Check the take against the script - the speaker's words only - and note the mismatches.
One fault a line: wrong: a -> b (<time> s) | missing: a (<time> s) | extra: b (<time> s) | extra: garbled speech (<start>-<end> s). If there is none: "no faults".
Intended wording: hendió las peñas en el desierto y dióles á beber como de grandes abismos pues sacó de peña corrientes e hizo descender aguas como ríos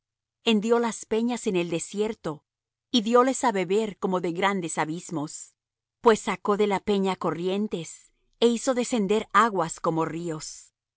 extra: la (6.7 s)